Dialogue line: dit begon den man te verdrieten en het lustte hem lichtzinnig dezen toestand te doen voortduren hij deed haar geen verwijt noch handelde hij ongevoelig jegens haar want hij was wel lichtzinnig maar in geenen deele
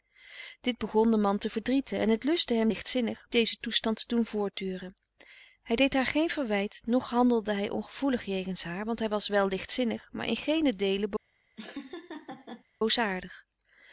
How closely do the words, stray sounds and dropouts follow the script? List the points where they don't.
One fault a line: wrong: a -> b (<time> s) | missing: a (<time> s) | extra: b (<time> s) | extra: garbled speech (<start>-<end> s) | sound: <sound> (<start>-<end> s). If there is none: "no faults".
sound: laugh (11.6-12.6 s)